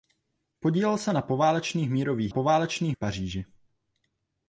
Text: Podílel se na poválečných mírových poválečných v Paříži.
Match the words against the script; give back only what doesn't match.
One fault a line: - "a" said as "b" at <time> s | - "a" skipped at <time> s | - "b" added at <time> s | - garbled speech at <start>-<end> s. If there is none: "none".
none